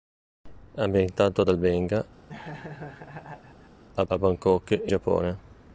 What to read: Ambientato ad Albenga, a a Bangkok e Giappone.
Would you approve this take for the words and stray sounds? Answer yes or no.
no